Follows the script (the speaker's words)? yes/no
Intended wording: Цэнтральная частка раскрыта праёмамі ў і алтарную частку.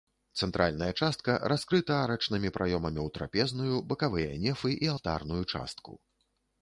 no